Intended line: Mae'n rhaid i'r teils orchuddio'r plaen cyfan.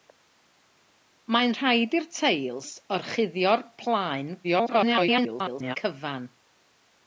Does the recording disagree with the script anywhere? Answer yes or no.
yes